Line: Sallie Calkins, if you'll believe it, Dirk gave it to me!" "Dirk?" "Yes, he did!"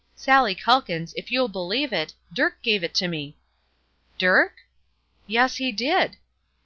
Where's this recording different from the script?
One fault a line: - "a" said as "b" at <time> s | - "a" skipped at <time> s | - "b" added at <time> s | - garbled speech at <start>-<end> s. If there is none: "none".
none